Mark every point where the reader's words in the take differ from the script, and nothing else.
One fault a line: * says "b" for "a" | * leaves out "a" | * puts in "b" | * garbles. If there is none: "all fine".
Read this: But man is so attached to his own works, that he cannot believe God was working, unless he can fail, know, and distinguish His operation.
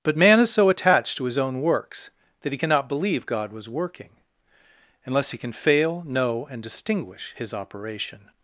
all fine